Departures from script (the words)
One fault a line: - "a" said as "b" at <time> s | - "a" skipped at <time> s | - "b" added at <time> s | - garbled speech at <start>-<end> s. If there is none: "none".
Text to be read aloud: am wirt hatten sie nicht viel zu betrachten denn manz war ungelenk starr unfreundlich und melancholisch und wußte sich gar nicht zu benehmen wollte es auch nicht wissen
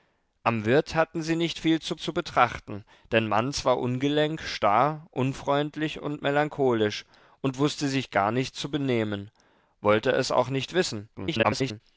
- "zu" added at 2.0 s
- garbled speech at 11.1-11.8 s